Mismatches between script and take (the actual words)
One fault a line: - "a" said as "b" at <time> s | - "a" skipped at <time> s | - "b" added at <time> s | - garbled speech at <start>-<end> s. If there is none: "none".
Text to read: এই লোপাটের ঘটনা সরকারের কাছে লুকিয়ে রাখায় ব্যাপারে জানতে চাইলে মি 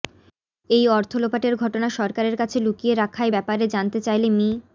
- "অর্থ" added at 0.9 s